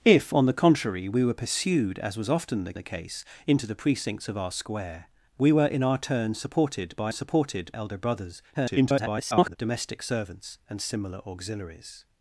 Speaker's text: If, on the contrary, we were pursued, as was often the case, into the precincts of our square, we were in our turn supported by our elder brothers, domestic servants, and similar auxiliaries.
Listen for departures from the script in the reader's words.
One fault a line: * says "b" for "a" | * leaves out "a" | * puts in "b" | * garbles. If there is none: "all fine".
* puts in "the"
* says "supported" for "our"
* garbles